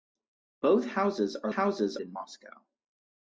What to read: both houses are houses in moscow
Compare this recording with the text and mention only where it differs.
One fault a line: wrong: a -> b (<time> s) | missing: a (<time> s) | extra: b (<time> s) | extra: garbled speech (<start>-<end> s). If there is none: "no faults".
no faults